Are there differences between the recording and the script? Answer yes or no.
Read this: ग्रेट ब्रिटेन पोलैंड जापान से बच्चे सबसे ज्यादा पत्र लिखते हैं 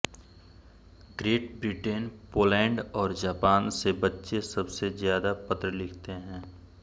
yes